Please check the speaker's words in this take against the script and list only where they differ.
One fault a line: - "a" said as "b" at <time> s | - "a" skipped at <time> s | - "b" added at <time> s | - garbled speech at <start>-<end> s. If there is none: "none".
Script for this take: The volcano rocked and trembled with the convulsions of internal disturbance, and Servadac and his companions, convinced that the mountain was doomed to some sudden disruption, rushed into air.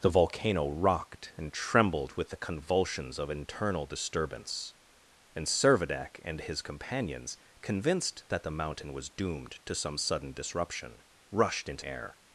none